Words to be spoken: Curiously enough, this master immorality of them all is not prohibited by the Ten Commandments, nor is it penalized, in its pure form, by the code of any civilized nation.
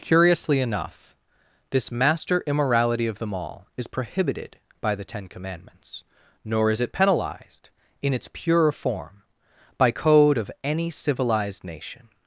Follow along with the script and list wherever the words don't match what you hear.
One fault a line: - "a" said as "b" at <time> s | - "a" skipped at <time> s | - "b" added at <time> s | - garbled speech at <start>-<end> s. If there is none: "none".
- "not" skipped at 3.9 s
- "the" skipped at 9.9 s